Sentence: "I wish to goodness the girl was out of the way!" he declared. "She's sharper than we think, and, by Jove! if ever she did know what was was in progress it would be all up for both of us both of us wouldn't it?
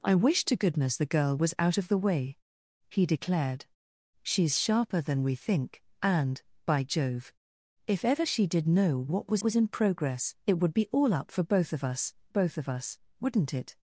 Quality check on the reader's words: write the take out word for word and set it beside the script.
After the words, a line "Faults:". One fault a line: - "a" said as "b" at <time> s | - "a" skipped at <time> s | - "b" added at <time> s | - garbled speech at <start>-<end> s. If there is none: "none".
"I wish to goodness the girl was out of the way!" he declared. "She's sharper than we think, and, by Jove! if ever she did know what was was in progress it would be all up for both of us both of us wouldn't it?
Faults:
none